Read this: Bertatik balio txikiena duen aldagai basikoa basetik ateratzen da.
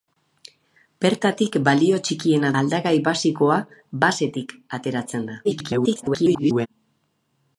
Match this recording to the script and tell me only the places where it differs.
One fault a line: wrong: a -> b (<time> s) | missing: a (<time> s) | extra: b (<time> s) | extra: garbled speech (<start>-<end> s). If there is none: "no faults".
missing: duen (2.5 s)
extra: garbled speech (5.4-6.7 s)